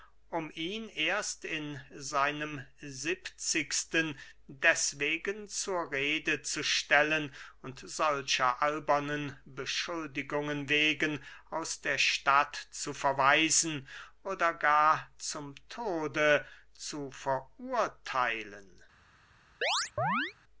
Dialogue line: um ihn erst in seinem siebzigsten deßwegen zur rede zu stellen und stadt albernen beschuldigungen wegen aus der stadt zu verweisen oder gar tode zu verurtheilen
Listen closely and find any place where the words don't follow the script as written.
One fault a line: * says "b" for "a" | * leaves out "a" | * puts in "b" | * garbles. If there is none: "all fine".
* says "solcher" for "stadt"
* puts in "zum"